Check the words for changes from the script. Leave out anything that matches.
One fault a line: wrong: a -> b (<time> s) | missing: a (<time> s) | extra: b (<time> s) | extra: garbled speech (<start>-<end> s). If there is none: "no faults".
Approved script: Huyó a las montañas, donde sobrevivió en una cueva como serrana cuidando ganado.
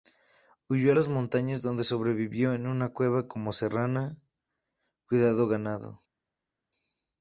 no faults